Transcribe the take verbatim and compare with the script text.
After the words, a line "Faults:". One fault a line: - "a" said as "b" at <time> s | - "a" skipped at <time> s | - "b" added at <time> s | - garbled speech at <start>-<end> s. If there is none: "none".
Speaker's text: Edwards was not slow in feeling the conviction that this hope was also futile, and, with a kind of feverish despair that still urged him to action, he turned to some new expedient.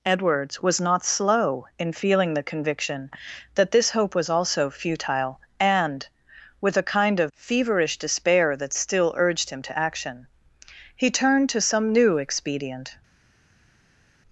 Edwards was not slow in feeling the conviction that this hope was also futile, and, with a kind of feverish despair that still urged him to action, he turned to some new expedient.
Faults:
none